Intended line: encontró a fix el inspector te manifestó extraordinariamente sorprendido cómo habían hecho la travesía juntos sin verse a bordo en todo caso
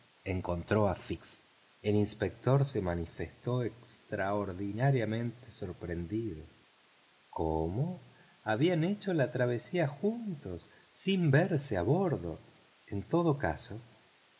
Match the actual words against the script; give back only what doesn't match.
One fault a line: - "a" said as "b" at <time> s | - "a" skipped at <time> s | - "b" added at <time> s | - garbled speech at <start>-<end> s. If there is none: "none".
- "te" said as "se" at 2.6 s